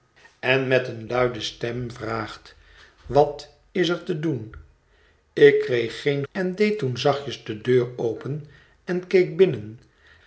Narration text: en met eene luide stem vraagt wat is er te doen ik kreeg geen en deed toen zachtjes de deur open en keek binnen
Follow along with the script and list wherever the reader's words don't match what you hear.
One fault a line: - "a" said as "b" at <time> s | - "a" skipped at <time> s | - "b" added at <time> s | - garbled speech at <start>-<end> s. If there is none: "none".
none